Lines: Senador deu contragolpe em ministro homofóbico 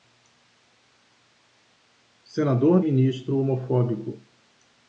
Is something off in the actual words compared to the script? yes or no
yes